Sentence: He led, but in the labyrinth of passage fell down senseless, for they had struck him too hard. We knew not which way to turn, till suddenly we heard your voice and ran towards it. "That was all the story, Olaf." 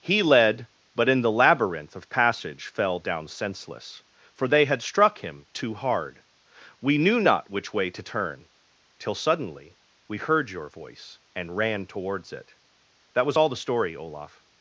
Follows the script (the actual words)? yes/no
yes